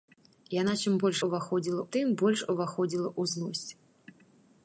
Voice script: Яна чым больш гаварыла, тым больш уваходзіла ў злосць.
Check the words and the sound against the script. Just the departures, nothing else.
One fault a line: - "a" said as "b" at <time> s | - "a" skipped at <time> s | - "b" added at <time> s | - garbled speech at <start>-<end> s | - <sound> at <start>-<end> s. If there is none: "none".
- "гаварыла" said as "уваходзіла" at 1.3 s